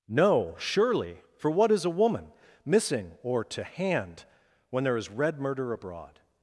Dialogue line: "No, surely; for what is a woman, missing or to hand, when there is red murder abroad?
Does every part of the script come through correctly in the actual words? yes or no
yes